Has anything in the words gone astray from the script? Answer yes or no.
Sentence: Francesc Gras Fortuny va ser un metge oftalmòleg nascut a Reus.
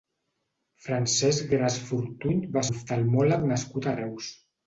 yes